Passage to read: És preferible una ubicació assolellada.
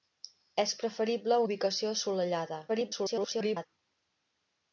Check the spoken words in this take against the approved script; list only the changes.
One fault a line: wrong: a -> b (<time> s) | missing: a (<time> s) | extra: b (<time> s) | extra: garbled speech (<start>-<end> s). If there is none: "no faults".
missing: una (1.4 s)
extra: garbled speech (2.7-3.7 s)